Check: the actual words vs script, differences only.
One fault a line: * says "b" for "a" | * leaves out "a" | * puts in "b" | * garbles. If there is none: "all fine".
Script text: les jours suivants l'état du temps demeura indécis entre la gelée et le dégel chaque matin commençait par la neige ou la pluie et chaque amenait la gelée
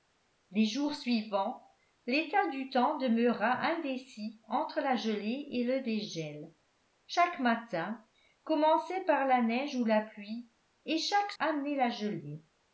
all fine